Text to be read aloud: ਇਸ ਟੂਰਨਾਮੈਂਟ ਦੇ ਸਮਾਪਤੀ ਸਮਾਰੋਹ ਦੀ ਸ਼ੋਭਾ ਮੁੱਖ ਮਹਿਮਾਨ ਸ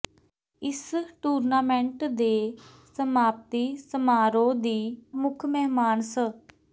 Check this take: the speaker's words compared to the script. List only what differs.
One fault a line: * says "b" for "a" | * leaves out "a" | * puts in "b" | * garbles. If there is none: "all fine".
* leaves out "ਸ਼ੋਭਾ"